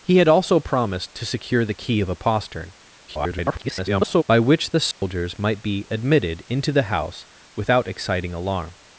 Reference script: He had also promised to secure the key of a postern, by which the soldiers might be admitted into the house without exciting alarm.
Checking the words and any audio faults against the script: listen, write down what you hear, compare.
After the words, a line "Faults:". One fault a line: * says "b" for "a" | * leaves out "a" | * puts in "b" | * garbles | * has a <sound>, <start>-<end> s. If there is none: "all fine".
He had also promised to secure the key of a postern, [garbled] by which the soldiers might be admitted into the house without exciting alarm.
Faults:
* garbles
* has a dropout, 4.9-5.0 s